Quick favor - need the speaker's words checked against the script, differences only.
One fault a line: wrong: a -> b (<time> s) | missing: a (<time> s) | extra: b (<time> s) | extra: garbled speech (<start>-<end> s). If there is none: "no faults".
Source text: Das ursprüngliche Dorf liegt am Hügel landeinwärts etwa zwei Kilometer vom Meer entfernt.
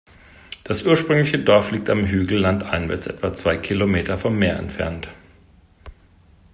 no faults